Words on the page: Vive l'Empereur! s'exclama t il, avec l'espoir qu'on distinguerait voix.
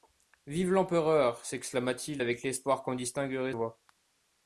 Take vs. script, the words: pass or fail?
pass